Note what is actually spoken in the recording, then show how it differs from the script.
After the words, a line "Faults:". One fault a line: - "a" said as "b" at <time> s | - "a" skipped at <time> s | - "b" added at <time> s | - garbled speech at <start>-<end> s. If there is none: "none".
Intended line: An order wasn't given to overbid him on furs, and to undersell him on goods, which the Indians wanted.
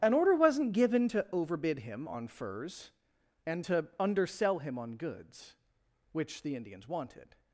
An order wasn't given to overbid him on furs, and to undersell him on goods, which the Indians wanted.
Faults:
none